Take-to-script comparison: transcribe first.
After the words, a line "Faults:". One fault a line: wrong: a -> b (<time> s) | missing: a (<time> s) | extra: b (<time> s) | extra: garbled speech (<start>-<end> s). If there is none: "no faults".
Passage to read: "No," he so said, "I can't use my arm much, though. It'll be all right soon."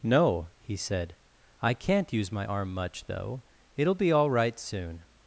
"No," he said, "I can't use my arm much, though. It'll be all right soon."
Faults:
missing: so (0.8 s)